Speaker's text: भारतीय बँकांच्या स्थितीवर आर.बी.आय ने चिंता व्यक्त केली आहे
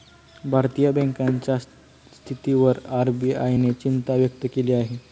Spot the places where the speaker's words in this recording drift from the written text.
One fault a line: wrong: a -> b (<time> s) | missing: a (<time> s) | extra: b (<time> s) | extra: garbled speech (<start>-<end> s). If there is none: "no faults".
no faults